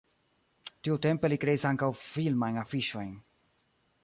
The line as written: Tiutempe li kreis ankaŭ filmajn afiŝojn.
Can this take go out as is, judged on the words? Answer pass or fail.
pass